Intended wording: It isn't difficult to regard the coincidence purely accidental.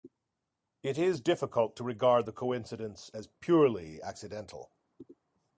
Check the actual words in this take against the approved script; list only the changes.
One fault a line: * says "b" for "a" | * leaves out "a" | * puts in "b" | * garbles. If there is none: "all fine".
* says "is" for "isn't"
* puts in "as"